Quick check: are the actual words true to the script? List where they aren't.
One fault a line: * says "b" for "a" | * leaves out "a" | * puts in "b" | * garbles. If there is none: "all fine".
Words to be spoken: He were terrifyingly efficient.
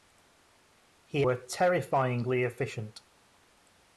all fine